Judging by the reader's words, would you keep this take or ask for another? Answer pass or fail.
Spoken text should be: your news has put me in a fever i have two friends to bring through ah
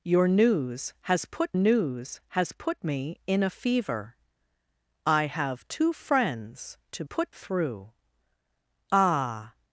fail